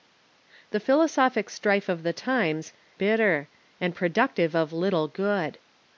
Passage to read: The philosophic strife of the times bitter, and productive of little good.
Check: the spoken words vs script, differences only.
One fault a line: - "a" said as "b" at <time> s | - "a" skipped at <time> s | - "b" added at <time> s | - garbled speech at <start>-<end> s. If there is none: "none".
none